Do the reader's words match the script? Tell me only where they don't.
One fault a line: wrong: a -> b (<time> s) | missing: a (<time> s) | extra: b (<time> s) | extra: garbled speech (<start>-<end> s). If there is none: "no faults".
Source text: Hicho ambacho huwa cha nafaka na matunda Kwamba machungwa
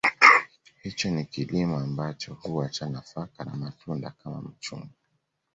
extra: ni kilimo (1.1 s)
wrong: Kwamba -> Kama (4.2 s)